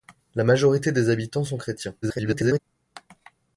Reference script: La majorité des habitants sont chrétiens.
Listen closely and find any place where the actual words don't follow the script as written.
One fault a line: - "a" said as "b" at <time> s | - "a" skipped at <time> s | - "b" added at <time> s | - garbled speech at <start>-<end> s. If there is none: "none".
- garbled speech at 2.0-2.6 s